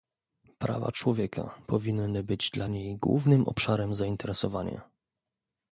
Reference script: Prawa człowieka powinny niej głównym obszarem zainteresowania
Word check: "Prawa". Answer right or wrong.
right